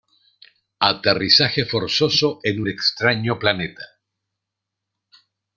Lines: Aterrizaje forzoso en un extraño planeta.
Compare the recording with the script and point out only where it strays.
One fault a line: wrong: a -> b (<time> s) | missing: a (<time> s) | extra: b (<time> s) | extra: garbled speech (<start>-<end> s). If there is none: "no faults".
no faults